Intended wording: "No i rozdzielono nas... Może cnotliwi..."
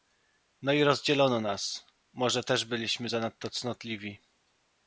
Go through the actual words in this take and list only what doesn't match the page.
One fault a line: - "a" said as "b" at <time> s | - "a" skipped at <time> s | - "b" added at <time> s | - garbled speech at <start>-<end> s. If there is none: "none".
- "też byliśmy zanadto" added at 2.4 s